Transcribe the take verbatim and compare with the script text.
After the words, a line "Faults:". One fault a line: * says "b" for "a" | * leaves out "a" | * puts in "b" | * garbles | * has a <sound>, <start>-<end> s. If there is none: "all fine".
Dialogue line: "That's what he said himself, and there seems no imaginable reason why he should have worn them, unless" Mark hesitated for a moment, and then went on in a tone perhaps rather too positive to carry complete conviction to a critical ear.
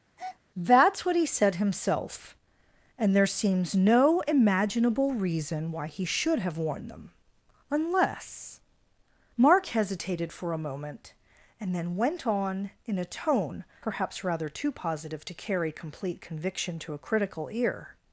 "That's what he said himself, and there seems no imaginable reason why he should have worn them, unless" Mark hesitated for a moment, and then went on in a tone perhaps rather too positive to carry complete conviction to a critical ear.
Faults:
* has a breath, 0.2-0.4 s